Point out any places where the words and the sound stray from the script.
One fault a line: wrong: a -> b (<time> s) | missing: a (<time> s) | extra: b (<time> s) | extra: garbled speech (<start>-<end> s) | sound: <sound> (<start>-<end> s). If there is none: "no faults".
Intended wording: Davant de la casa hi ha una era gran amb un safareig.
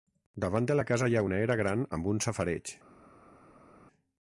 no faults